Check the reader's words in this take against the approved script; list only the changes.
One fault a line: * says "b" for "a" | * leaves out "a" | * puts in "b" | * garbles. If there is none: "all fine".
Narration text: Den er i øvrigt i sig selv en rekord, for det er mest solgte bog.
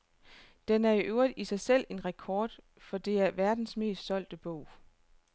* puts in "verdens"